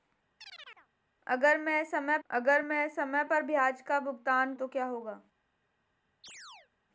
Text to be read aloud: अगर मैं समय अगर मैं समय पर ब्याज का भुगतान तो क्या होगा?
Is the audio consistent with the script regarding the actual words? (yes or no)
yes